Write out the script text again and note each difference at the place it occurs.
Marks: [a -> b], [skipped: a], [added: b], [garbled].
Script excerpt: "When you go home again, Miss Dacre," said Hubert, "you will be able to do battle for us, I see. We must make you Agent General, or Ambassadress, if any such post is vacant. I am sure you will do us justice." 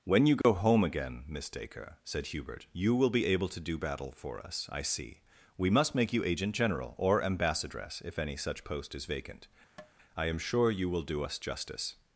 "When you go home again, Miss Dacre," said Hubert, "you will be able to do battle for us, I see. We must make you Agent General, or Ambassadress, if any such post is vacant. I am sure you will do us justice."